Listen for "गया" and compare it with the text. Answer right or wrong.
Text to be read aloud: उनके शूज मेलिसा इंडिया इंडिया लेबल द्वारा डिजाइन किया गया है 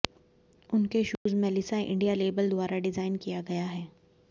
right